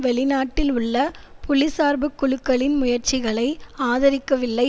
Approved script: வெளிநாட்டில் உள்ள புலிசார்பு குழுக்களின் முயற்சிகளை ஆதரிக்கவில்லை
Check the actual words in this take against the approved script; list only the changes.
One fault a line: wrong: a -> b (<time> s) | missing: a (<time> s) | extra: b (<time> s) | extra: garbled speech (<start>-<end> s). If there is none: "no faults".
no faults